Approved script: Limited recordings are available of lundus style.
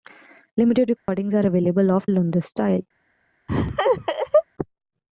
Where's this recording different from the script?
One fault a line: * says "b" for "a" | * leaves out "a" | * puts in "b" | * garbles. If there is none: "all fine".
all fine